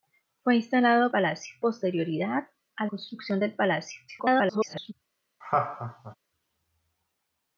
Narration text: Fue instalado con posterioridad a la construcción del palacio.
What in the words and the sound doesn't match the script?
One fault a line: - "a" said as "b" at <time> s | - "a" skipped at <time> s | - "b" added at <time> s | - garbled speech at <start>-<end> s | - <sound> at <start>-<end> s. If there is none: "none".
- "con" said as "palacio" at 1.1 s
- "la" skipped at 2.9 s
- garbled speech at 4.1-4.9 s
- laugh at 5.4-6.2 s